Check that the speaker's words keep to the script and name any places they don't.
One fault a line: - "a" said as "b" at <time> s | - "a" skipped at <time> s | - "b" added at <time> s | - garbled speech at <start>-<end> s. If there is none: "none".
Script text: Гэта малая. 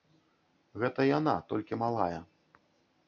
- "яна толькі" added at 1.2 s